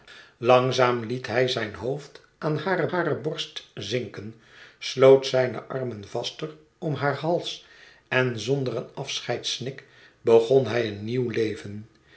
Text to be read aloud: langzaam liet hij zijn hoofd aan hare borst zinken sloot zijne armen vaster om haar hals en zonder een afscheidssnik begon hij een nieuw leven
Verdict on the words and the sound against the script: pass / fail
fail